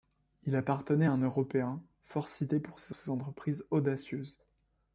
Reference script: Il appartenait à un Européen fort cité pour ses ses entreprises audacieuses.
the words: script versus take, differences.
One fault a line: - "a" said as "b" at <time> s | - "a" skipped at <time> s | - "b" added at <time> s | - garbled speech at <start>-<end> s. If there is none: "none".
none